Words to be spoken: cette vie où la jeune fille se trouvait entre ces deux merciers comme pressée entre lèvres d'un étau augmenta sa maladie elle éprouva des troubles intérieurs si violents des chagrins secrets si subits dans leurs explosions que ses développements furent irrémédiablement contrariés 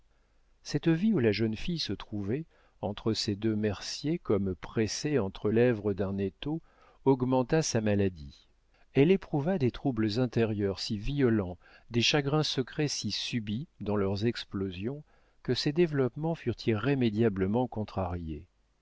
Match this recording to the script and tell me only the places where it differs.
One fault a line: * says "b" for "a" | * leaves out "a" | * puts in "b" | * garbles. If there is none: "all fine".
all fine